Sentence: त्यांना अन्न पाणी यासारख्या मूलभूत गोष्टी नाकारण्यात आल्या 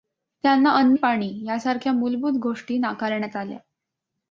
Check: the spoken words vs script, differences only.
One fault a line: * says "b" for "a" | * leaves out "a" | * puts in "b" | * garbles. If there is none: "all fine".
all fine